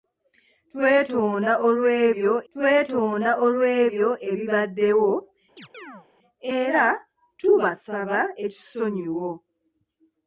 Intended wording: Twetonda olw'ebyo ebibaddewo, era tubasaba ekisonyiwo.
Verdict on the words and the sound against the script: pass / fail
fail